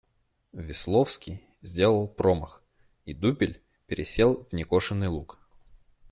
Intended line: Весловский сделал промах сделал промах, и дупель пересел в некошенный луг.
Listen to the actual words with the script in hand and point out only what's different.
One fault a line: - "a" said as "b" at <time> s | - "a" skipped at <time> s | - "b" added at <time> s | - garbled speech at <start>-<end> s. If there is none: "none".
- "сделал промах" skipped at 2.6 s